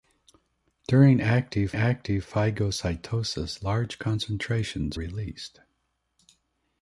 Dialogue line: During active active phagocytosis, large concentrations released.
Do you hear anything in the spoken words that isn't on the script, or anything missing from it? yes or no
no